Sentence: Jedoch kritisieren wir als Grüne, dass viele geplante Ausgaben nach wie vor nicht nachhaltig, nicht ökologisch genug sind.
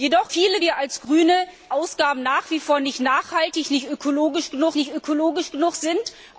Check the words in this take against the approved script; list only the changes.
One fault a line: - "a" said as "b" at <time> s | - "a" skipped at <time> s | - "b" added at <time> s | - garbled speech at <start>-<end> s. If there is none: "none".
- "kritisieren" said as "viele" at 0.3 s
- "dass viele geplante" skipped at 1.3 s
- "nicht ökologisch genug" added at 4.7 s